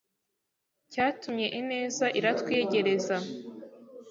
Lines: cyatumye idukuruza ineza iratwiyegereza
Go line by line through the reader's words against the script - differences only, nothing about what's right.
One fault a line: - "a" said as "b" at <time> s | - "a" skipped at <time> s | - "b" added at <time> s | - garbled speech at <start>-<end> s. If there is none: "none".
- "idukuruza" skipped at 1.5 s